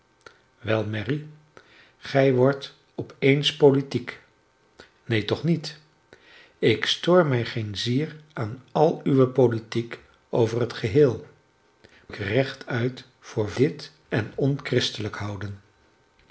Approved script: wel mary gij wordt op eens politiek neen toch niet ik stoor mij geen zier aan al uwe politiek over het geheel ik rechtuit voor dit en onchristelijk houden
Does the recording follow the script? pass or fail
pass